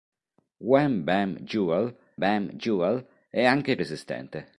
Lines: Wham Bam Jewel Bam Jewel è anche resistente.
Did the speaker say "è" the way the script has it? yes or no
yes